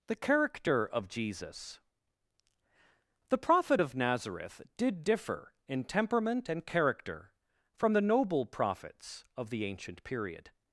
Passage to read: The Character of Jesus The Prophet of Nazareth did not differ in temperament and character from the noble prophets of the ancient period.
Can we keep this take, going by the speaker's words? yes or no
no